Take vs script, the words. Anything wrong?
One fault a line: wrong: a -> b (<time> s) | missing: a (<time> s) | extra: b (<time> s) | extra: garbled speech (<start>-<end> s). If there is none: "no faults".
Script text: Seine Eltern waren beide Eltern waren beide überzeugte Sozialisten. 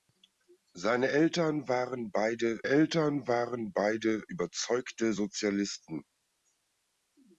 no faults